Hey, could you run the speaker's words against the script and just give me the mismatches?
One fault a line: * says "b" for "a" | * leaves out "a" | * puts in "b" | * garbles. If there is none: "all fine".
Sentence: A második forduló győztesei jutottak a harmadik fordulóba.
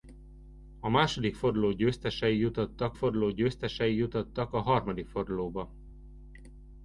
* puts in "forduló győztesei jutottak"